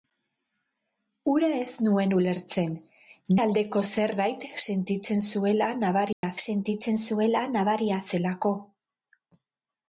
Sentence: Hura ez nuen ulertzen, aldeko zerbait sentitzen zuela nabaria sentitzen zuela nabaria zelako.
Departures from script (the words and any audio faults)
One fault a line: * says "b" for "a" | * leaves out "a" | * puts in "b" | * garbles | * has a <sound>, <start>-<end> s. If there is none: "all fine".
* has a dropout, 6.1-6.2 s